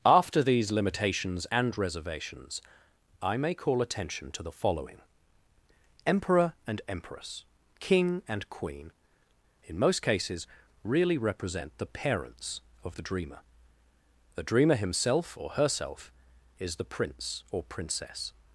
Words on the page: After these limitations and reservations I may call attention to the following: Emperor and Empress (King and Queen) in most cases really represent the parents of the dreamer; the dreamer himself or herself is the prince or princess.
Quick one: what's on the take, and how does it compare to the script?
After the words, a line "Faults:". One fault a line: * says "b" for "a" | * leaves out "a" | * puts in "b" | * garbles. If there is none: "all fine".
After these limitations and reservations I may call attention to the following: Emperor and Empress (King and Queen) in most cases really represent the parents of the dreamer; the dreamer himself or herself is the prince or princess.
Faults:
all fine